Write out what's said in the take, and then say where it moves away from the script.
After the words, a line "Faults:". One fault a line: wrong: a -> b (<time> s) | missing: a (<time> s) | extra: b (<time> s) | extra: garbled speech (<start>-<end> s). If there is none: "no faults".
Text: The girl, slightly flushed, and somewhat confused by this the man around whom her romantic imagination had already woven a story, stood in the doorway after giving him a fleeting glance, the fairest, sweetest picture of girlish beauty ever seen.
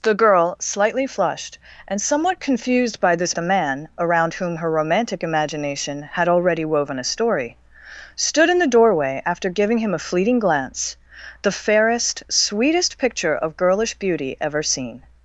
The girl, slightly flushed, and somewhat confused by this the man around whom her romantic imagination had already woven a story, stood in the doorway after giving him a fleeting glance, the fairest, sweetest picture of girlish beauty ever seen.
Faults:
no faults